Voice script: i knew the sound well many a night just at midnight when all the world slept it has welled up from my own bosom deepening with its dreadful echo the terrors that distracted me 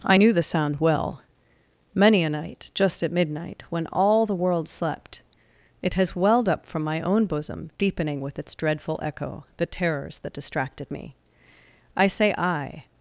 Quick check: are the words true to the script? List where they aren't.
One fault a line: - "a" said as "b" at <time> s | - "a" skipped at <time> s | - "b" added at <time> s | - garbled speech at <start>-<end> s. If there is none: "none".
- "i say i" added at 11.9 s